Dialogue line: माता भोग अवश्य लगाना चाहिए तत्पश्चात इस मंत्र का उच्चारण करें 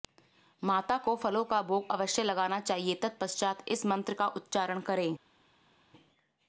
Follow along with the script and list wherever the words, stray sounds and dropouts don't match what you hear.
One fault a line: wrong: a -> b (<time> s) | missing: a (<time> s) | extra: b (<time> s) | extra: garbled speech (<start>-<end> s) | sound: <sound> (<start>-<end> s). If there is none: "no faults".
extra: को फलों का (1.0 s)